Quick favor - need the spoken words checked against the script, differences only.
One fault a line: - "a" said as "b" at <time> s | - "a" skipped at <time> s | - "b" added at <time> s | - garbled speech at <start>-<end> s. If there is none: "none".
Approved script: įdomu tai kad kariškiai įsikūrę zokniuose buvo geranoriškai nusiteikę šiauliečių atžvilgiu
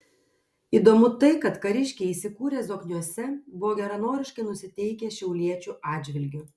none